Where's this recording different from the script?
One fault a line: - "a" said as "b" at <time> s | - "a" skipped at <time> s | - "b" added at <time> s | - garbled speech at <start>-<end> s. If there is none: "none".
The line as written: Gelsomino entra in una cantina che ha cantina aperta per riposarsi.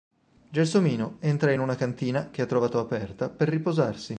- "cantina" said as "trovato" at 2.5 s